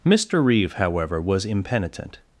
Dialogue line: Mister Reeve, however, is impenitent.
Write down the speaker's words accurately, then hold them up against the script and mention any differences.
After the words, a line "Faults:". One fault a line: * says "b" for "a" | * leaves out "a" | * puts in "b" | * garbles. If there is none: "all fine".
Mister Reeve, however, was impenitent.
Faults:
* says "was" for "is"